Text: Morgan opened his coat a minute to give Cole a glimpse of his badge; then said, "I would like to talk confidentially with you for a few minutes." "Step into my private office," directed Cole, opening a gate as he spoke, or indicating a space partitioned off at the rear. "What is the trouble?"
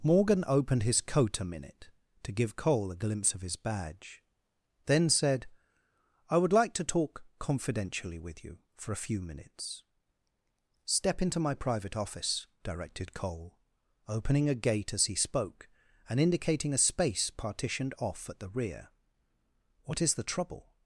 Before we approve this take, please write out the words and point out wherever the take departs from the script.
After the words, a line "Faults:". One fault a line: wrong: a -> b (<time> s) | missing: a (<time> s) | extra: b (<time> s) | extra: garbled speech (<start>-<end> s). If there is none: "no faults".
Morgan opened his coat a minute to give Cole a glimpse of his badge; then said, "I would like to talk confidentially with you for a few minutes." "Step into my private office," directed Cole, opening a gate as he spoke, and indicating a space partitioned off at the rear. "What is the trouble?"
Faults:
wrong: or -> and (16.1 s)